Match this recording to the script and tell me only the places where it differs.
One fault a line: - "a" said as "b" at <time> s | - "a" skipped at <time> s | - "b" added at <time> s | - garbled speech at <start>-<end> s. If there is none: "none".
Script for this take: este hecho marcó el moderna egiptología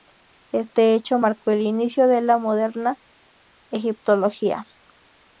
- "inicio de la" added at 1.6 s